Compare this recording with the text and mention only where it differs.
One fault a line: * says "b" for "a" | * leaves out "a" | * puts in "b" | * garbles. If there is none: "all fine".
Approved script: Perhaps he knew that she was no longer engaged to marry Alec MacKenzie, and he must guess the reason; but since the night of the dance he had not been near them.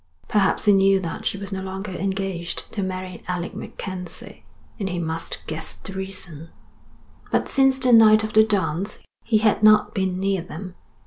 all fine